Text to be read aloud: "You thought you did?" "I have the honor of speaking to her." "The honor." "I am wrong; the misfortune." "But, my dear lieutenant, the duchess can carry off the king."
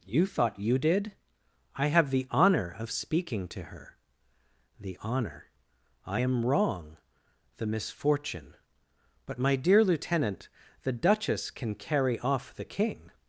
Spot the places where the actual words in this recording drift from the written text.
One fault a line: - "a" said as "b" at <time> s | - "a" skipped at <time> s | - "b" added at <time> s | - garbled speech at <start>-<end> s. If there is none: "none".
none